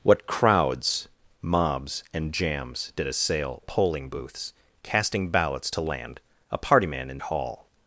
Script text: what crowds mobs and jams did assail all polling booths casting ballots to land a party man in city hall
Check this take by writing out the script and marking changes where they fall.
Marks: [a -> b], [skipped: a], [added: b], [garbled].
what crowds mobs and jams did assail [skipped: all] polling booths casting ballots to land a party man in [skipped: city] hall